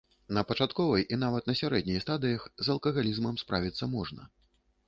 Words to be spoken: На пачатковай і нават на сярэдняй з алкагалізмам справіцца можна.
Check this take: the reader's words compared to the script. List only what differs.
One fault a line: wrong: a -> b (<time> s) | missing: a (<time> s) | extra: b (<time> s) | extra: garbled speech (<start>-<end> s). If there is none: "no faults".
extra: стадыях (2.0 s)